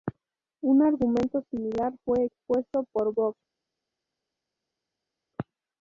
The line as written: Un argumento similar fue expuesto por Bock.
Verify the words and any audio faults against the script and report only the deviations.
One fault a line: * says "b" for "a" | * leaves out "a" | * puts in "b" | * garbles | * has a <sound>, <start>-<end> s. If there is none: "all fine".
all fine